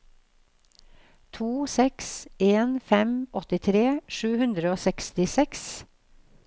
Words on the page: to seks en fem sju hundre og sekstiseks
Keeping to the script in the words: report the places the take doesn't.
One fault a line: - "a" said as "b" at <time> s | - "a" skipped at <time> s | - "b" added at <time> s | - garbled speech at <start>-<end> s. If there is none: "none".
- "åttitre" added at 3.4 s